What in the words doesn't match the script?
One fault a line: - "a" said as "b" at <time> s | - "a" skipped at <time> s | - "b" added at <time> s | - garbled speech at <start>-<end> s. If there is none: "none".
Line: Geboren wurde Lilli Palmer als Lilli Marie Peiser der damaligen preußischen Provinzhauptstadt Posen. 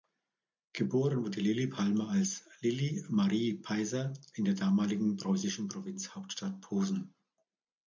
- "in" added at 4.3 s